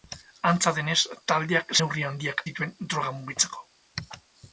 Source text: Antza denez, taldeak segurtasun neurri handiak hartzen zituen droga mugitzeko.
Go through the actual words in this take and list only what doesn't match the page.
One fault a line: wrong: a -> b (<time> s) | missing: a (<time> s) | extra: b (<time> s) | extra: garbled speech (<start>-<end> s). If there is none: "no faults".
missing: segurtasun (1.8 s)
missing: hartzen (2.4 s)